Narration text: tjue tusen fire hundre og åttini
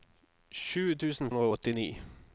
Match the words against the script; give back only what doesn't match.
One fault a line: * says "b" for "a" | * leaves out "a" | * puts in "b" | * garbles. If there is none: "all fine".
* leaves out "fire"